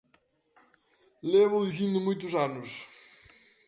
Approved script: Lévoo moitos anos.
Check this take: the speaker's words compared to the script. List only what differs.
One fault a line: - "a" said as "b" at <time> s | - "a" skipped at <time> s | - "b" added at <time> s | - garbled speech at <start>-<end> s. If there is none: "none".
- "dicindo" added at 1.7 s